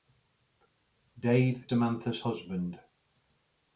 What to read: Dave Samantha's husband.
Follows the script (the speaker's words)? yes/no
yes